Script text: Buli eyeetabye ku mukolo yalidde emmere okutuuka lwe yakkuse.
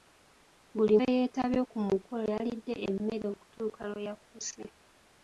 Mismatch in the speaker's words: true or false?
false